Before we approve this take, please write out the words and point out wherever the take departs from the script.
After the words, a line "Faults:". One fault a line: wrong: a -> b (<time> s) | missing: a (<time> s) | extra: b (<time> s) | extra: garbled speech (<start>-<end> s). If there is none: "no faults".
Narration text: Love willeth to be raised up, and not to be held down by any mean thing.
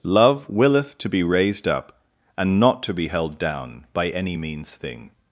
Love willeth to be raised up, and not to be held down by any means thing.
Faults:
wrong: mean -> means (4.3 s)